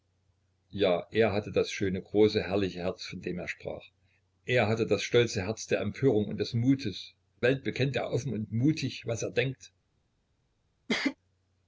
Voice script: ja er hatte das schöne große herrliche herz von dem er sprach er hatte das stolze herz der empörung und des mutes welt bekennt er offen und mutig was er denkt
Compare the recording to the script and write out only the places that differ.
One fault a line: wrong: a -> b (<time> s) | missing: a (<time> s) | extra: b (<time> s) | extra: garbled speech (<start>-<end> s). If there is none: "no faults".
no faults